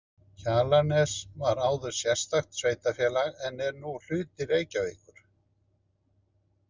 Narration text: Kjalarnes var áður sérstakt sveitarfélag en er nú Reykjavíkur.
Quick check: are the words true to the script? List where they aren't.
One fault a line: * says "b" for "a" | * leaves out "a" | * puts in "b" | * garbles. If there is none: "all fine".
* puts in "hluti"